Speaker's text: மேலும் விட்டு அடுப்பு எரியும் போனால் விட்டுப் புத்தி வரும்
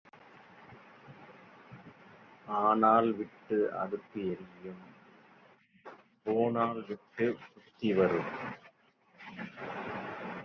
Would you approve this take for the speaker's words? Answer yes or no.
no